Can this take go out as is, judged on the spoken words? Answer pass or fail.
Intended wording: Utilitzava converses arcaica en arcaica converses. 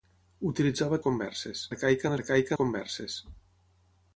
pass